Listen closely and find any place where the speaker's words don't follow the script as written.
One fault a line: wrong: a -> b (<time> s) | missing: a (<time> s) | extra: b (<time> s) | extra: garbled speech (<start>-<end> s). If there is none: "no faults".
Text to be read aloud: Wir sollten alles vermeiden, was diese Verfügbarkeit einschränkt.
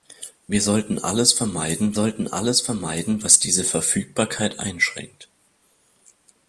extra: sollten alles vermeiden (1.9 s)